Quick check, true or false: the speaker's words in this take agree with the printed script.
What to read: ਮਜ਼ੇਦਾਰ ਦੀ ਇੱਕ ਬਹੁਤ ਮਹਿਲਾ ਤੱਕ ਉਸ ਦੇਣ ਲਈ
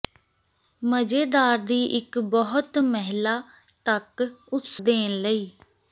true